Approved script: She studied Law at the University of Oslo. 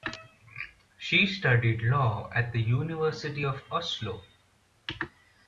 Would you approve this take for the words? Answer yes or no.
yes